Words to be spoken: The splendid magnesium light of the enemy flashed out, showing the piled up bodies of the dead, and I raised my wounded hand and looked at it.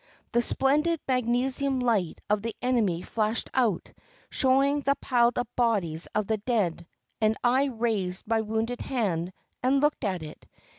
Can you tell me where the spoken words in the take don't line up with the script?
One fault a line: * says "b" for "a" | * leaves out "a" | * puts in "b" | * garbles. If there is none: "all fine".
all fine